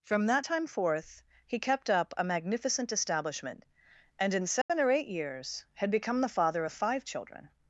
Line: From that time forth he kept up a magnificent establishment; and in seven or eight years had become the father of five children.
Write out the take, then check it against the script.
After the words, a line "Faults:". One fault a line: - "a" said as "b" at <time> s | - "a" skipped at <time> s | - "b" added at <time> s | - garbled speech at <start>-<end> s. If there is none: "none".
From that time forth he kept up a magnificent establishment; and in seven or eight years had become the father of five children.
Faults:
none